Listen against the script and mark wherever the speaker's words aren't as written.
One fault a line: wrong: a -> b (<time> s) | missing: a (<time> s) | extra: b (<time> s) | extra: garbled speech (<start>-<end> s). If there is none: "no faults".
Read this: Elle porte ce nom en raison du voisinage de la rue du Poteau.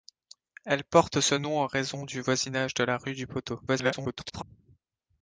extra: garbled speech (3.7-4.4 s)